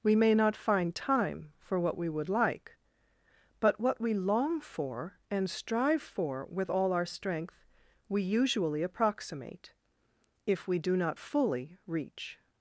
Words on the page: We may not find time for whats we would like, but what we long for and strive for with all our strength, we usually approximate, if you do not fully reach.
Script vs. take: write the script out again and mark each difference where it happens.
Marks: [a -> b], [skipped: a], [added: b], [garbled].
We may not find time for [whats -> what] we would like, but what we long for and strive for with all our strength, we usually approximate, if [you -> we] do not fully reach.